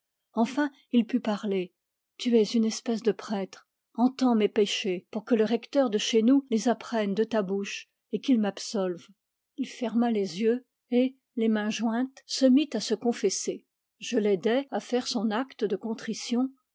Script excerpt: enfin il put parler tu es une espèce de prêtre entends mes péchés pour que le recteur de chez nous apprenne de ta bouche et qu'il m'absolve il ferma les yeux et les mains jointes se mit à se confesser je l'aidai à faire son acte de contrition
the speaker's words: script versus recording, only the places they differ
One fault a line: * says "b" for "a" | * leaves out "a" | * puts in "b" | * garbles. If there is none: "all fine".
* puts in "les"